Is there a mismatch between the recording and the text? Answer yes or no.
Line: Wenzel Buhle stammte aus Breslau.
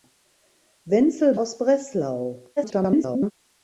yes